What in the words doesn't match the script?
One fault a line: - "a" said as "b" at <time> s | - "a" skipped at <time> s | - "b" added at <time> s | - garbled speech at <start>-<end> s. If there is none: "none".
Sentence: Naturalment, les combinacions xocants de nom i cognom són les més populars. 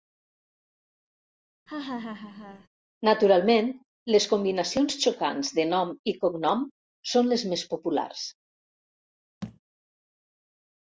none